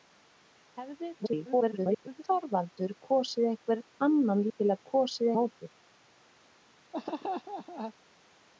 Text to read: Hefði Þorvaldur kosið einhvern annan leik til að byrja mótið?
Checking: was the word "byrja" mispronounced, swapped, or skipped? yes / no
yes